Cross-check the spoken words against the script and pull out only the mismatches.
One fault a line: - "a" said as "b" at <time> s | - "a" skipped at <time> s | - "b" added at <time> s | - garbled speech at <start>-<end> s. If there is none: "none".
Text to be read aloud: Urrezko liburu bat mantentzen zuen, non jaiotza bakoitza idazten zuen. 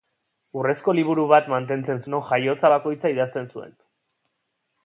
- "zuen" skipped at 2.0 s